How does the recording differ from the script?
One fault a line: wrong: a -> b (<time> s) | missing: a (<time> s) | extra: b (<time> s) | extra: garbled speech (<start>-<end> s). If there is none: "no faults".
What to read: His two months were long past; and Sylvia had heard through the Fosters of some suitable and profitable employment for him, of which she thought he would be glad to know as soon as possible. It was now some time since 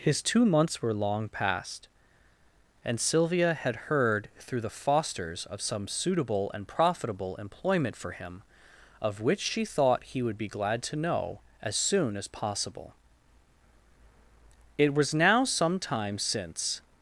no faults